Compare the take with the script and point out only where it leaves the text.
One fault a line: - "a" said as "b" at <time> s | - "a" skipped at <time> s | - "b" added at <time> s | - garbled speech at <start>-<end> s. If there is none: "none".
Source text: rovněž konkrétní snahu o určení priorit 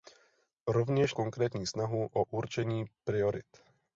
none